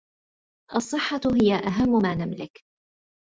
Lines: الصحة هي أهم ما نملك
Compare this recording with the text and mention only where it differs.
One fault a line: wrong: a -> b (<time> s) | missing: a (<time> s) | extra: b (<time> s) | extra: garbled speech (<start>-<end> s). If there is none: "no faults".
no faults